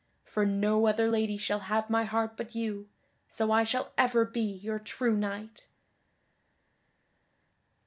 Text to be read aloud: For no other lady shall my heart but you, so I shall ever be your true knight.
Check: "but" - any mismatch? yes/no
no